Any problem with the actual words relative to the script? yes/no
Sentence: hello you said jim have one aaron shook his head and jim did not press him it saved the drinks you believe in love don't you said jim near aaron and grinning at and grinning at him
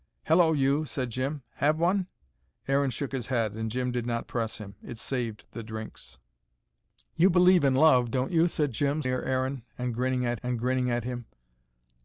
no